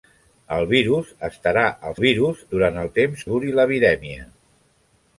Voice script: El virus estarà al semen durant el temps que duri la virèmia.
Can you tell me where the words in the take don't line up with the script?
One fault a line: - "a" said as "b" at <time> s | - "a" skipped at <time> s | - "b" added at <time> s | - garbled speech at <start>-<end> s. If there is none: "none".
- "semen" said as "virus" at 2.0 s
- "que" skipped at 3.2 s